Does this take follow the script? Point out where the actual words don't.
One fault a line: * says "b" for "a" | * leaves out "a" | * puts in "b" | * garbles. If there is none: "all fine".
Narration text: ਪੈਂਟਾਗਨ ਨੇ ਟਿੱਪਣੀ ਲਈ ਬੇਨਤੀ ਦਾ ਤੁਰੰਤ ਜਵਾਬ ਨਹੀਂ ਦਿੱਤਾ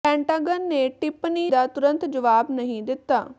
* leaves out "ਲਈ ਬੇਨਤੀ"